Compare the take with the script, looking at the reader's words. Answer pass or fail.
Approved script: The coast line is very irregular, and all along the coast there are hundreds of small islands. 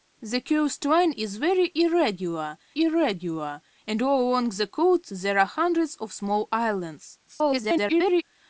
fail